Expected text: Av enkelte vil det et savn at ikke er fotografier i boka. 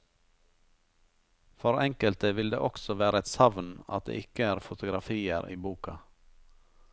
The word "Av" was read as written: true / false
false